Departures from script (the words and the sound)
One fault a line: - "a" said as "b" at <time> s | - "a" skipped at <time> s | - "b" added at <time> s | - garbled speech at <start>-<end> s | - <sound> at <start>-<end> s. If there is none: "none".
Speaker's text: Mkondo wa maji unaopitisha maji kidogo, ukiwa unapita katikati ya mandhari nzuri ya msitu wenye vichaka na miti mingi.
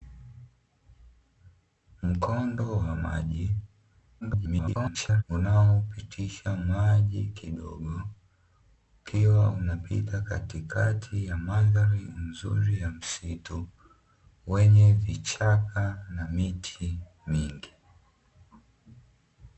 - garbled speech at 4.2-5.2 s